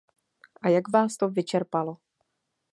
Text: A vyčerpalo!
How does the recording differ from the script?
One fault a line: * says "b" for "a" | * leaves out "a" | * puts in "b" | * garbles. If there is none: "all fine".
* puts in "jak vás to"